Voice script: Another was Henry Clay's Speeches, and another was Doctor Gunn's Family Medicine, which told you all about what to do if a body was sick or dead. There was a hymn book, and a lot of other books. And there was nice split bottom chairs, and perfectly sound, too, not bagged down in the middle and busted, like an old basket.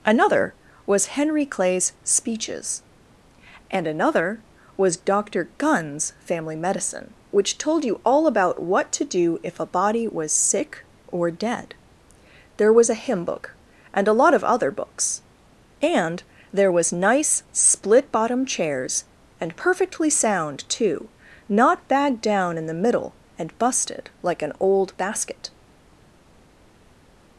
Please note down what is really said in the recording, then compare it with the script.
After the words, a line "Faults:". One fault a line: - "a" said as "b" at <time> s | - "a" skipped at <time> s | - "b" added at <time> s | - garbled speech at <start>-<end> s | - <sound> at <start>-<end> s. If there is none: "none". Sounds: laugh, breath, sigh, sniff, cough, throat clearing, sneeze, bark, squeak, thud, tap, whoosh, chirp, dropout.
Another was Henry Clay's Speeches, and another was Doctor Gunn's Family Medicine, which told you all about what to do if a body was sick or dead. There was a hymn book, and a lot of other books. And there was nice split bottom chairs, and perfectly sound, too, not bagged down in the middle and busted, like an old basket.
Faults:
none